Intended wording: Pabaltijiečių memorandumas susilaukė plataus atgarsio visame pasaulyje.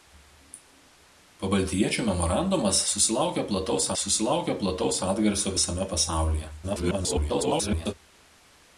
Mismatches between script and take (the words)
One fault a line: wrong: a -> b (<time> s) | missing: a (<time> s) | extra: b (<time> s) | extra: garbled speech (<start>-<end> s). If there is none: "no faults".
extra: susilaukė plataus (4.0 s)
extra: garbled speech (6.6-7.9 s)